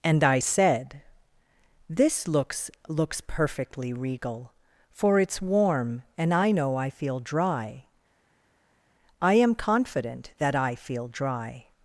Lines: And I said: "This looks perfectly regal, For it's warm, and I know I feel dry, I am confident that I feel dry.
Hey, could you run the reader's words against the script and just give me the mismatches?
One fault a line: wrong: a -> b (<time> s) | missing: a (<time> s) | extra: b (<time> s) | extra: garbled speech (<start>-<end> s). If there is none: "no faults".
extra: looks (2.9 s)